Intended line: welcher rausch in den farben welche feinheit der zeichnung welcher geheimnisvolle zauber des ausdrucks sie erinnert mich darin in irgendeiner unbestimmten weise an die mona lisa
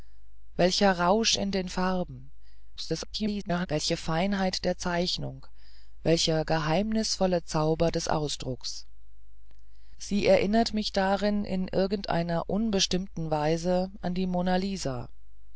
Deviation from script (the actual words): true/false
true